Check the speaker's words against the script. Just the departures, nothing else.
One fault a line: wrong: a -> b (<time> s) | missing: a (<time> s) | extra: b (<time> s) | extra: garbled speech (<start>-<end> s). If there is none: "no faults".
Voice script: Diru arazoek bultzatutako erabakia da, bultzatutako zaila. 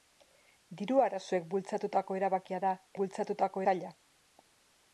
no faults